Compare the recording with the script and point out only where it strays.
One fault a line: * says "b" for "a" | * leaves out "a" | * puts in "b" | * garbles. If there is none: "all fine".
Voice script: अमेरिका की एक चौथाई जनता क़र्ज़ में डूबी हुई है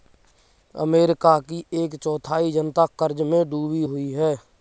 all fine